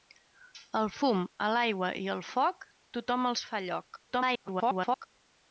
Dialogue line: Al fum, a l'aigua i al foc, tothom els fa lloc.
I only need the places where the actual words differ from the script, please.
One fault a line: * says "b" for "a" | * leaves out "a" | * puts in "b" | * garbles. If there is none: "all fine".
* garbles